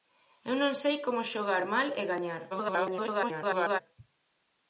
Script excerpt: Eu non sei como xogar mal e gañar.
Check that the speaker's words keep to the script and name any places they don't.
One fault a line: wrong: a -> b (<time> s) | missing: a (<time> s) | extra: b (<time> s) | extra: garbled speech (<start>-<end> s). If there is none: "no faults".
extra: garbled speech (2.5-3.8 s)